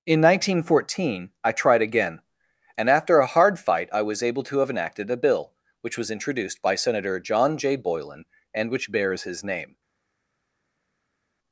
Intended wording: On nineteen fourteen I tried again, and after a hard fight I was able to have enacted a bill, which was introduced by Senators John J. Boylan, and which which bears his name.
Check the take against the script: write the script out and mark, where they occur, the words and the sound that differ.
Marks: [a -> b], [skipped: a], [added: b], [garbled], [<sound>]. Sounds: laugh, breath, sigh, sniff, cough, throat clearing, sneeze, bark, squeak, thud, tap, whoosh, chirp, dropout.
[On -> In] nineteen fourteen I tried again, and after a hard fight I was able to have enacted a bill, which was introduced by [Senators -> Senator] John J. Boylan, and which [skipped: which] bears his name.